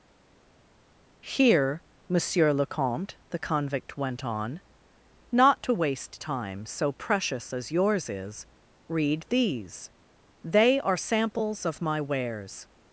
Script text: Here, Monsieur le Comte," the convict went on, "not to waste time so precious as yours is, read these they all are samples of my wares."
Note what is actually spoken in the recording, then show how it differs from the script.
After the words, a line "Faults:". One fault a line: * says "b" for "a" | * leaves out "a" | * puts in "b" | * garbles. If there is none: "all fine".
Here, Monsieur le Comte," the convict went on, "not to waste time so precious as yours is, read these they are samples of my wares."
Faults:
* leaves out "all"